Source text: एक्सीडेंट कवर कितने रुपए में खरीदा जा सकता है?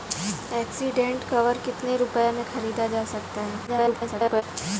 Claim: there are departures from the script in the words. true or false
true